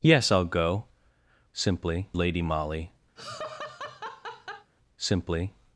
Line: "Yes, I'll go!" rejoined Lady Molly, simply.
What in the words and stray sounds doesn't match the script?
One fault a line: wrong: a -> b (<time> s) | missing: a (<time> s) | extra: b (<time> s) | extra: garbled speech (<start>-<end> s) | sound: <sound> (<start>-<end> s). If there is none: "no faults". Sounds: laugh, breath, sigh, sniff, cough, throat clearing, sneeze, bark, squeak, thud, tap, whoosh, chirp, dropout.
wrong: rejoined -> simply (1.5 s)
sound: laugh (3.2-4.7 s)